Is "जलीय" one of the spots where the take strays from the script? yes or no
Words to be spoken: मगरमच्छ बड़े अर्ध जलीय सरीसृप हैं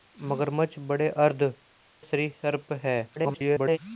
yes